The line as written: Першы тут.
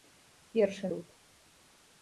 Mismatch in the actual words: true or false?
false